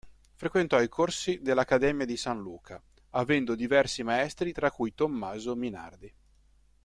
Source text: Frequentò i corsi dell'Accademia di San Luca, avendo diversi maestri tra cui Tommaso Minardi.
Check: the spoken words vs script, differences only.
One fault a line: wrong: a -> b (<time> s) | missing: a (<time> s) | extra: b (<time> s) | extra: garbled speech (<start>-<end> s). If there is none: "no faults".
no faults